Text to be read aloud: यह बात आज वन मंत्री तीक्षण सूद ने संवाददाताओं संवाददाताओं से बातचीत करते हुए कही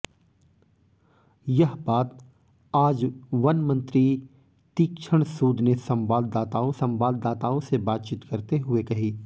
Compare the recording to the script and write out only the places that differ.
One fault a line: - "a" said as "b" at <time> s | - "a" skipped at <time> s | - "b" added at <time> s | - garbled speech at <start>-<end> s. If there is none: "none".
none